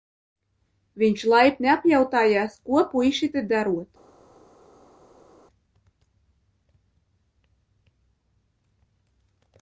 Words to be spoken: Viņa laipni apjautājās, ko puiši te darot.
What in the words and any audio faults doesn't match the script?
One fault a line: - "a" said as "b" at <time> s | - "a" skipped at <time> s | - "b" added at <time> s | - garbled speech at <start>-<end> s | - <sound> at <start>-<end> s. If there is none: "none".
- "Viņa" said as "Viņš" at 1.0 s